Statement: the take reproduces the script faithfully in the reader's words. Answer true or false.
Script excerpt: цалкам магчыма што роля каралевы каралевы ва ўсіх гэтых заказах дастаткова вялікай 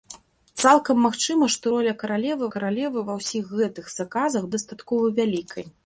true